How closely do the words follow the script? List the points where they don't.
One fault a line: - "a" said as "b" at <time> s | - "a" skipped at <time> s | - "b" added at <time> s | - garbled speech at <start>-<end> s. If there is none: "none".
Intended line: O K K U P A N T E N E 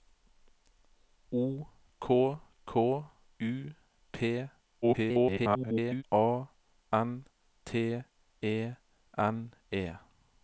- garbled speech at 4.8-6.0 s